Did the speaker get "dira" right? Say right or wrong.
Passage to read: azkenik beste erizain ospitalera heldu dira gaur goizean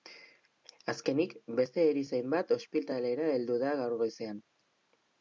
wrong